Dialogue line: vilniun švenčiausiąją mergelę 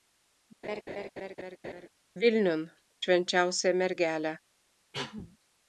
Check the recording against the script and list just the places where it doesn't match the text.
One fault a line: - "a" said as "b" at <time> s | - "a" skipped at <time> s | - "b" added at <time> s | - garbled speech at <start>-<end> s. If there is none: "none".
none